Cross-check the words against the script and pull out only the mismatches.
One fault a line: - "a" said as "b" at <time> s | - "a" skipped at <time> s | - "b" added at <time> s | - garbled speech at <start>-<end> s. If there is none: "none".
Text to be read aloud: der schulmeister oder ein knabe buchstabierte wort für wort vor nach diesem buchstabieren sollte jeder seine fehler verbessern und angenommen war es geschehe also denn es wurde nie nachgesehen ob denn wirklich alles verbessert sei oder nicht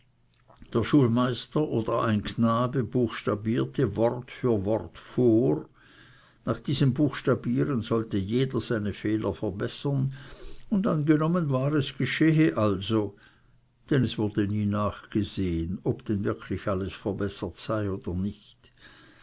none